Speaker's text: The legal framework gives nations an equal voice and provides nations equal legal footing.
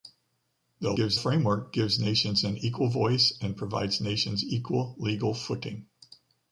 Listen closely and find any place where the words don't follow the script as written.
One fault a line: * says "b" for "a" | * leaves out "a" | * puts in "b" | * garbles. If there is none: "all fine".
* says "gives" for "legal"